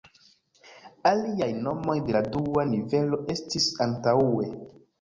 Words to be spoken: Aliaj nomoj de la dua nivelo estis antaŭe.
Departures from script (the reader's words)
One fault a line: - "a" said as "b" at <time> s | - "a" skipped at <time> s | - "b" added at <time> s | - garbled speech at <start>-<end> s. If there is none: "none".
none